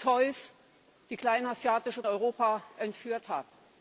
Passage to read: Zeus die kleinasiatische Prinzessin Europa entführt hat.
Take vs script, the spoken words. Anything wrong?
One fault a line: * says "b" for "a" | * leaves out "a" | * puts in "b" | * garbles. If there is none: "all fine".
* leaves out "Prinzessin"